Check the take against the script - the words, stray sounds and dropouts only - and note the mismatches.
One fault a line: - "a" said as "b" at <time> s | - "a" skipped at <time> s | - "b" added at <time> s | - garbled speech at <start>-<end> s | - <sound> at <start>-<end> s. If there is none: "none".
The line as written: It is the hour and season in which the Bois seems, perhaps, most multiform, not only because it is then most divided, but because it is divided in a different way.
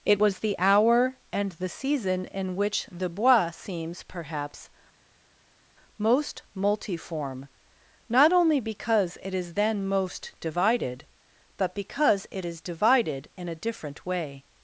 - "is" said as "was" at 0.2 s
- "the" added at 1.5 s